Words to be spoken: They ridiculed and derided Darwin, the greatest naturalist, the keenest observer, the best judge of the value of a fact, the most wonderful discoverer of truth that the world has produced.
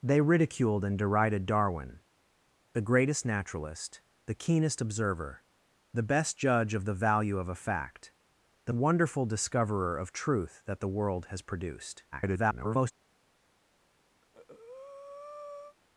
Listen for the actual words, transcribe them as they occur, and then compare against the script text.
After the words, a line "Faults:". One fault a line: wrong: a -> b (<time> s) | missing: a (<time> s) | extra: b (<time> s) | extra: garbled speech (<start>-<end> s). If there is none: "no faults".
They ridiculed and derided Darwin, the greatest naturalist, the keenest observer, the best judge of the value of a fact, the wonderful discoverer of truth that the world has produced. [garbled]
Faults:
missing: most (8.7 s)
extra: garbled speech (12.1-12.9 s)